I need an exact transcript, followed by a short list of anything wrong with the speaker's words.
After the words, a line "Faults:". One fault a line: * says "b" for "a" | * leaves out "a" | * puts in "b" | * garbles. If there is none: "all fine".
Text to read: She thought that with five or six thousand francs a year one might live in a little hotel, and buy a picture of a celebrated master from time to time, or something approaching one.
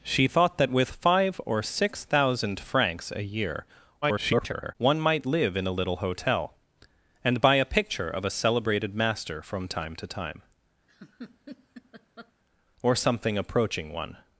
She thought that with five or six thousand francs a year [garbled] one might live in a little hotel, and buy a picture of a celebrated master from time to time, or something approaching one.
Faults:
* garbles